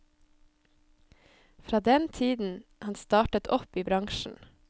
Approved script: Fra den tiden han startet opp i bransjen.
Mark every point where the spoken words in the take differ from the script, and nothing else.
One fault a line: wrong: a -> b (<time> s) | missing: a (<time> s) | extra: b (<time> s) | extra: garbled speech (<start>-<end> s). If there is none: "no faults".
no faults